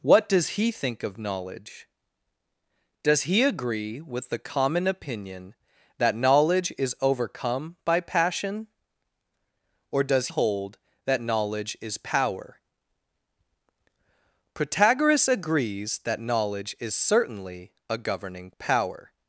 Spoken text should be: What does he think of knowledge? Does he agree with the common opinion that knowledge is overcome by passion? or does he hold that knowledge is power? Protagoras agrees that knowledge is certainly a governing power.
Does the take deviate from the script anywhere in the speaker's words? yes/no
yes